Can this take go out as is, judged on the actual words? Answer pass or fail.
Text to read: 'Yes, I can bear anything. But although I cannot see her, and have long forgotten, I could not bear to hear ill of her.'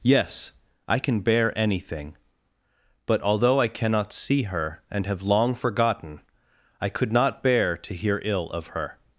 pass